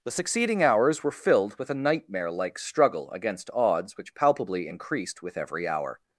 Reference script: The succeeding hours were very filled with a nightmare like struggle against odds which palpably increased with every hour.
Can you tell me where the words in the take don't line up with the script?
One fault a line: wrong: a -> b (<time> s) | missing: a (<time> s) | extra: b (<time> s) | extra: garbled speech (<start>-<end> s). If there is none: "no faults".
missing: very (1.1 s)